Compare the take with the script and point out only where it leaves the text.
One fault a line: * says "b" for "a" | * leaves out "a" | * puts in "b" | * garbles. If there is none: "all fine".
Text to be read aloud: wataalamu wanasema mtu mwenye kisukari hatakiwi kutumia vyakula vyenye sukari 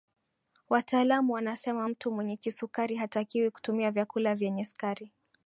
all fine